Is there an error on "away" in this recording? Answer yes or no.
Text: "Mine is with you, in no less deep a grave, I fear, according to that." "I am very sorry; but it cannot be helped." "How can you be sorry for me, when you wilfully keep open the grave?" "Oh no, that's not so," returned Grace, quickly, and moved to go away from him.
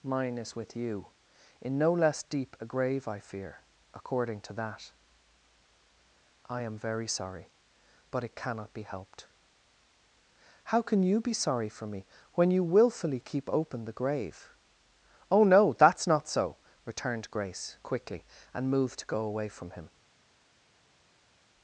no